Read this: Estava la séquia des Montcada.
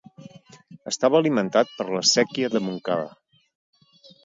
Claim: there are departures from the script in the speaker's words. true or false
true